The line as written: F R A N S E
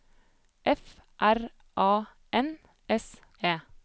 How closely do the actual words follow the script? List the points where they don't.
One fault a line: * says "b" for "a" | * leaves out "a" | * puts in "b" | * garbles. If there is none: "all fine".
all fine